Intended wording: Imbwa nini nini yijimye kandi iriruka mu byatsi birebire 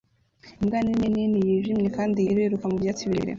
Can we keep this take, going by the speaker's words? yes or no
yes